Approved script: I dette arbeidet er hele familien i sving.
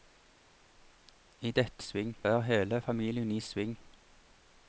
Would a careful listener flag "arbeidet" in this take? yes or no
yes